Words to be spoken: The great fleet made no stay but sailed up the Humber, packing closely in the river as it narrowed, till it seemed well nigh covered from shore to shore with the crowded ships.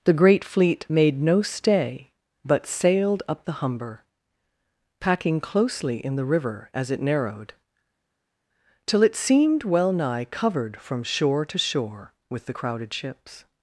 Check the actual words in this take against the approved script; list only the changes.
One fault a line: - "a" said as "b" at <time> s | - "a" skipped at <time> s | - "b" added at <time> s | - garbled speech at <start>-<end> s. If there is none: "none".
none